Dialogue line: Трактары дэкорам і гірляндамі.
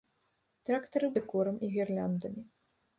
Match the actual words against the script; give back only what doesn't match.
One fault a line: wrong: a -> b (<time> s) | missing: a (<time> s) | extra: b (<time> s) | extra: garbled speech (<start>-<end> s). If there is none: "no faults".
no faults